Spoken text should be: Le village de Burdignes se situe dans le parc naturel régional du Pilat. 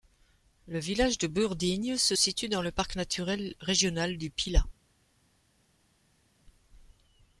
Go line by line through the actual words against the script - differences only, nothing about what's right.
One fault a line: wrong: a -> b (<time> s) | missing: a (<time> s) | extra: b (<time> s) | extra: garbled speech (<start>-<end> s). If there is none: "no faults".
no faults